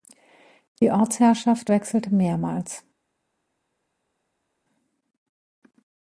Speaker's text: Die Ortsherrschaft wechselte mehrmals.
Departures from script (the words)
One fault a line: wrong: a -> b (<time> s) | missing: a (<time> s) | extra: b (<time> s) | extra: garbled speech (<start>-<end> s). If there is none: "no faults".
no faults